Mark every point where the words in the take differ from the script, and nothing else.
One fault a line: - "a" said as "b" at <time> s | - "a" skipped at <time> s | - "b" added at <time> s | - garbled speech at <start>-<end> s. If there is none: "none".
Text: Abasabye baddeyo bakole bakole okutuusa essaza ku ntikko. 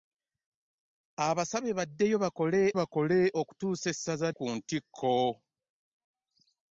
none